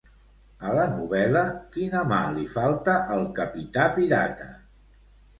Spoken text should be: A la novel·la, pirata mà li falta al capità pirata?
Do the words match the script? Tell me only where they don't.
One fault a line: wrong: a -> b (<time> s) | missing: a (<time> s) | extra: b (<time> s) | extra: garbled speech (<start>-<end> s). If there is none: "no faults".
wrong: pirata -> quina (1.8 s)